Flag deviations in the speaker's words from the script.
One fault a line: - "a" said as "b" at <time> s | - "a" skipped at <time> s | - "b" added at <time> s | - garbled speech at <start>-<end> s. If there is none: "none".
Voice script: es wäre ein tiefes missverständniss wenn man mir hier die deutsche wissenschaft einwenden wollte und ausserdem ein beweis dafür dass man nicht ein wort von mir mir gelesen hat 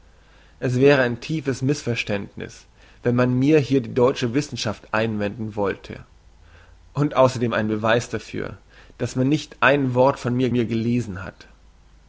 none